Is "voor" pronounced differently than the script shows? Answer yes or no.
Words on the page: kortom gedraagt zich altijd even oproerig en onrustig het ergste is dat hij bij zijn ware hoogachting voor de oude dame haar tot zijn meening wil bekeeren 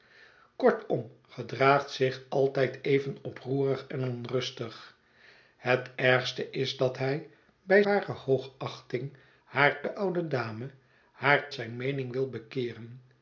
yes